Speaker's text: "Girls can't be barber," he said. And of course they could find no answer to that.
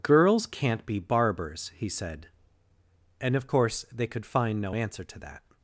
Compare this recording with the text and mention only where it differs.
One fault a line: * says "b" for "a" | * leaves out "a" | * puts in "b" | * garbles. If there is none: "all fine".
* says "barbers" for "barber"